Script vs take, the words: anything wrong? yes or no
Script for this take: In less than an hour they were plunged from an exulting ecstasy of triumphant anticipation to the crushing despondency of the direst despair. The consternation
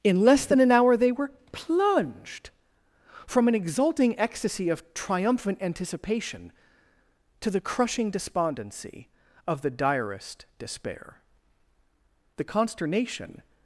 no